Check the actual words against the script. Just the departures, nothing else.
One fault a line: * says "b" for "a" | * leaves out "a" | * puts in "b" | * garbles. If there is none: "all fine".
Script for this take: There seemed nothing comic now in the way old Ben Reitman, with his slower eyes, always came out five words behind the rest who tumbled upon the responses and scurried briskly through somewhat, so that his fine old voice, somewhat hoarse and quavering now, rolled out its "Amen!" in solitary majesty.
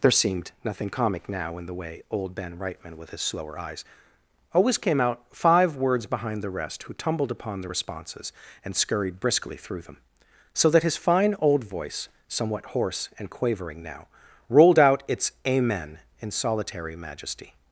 * says "them" for "somewhat"